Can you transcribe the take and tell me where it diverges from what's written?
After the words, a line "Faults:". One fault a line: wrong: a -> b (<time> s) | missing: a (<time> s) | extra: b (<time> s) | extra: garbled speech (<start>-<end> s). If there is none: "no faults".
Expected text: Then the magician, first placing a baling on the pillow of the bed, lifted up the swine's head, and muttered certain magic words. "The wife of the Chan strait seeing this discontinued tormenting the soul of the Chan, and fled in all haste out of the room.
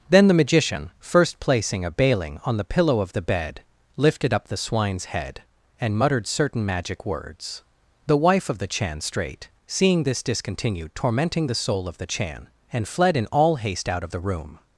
Then the magician, first placing a baling on the pillow of the bed, lifted up the swine's head, and muttered certain magic words. "The wife of the Chan strait seeing this discontinued tormenting the soul of the Chan, and fled in all haste out of the room.
Faults:
no faults